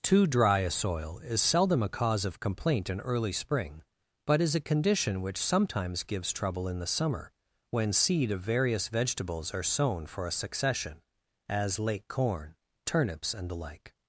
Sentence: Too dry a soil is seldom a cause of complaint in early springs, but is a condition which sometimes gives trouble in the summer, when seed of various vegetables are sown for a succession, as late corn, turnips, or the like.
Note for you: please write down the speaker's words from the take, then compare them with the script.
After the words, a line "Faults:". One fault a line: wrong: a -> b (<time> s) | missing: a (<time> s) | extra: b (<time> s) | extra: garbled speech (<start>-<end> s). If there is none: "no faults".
Too dry a soil is seldom a cause of complaint in early spring, but is a condition which sometimes gives trouble in the summer, when seed of various vegetables are sown for a succession, as late corn, turnips, and the like.
Faults:
wrong: springs -> spring (3.3 s)
wrong: or -> and (13.3 s)